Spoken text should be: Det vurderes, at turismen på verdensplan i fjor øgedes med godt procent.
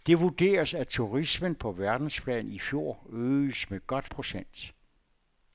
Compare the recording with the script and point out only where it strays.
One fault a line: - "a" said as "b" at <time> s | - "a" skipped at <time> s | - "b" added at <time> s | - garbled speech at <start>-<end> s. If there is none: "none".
none